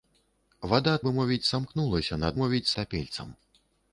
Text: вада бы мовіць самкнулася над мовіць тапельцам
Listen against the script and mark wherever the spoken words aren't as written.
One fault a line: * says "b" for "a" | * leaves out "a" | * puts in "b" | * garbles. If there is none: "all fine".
all fine